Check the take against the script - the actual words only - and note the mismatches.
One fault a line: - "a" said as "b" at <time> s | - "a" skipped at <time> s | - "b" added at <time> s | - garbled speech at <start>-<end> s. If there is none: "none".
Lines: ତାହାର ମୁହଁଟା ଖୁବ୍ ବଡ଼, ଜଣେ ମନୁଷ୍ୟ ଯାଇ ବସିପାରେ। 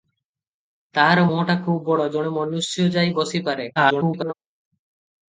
- garbled speech at 3.8-4.3 s